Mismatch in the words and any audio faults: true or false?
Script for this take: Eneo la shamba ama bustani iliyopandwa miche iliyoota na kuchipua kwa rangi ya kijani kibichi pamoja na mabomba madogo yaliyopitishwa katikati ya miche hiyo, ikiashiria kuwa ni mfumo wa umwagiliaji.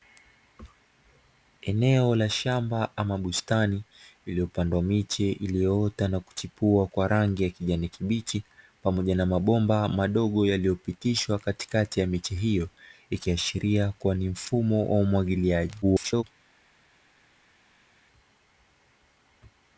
true